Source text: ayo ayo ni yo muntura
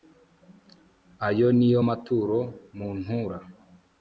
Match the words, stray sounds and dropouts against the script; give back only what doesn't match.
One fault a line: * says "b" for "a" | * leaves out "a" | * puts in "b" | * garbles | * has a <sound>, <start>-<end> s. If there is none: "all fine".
* leaves out "ayo"
* puts in "maturo"